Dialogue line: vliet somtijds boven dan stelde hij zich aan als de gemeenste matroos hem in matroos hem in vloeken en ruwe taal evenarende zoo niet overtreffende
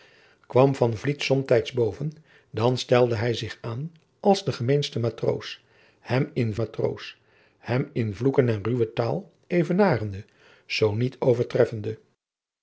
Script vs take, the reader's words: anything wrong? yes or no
no